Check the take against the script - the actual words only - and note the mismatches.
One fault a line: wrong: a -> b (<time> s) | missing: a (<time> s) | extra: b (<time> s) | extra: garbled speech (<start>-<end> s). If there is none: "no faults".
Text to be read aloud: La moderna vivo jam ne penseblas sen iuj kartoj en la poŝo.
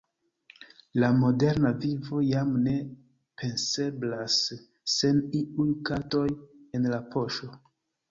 no faults